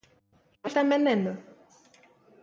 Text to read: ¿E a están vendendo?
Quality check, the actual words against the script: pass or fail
pass